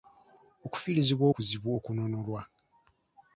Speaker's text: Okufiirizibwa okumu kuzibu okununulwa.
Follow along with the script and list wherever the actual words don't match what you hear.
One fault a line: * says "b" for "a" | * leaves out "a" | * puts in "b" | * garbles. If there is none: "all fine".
* leaves out "okumu"